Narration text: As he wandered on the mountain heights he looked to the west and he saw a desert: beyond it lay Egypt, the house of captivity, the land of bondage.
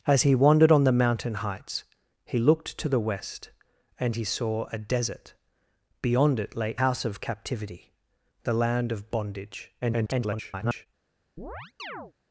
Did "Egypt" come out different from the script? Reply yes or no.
yes